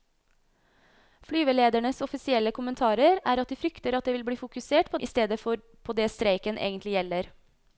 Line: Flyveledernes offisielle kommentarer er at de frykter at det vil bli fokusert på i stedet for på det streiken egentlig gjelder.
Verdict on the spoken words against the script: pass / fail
pass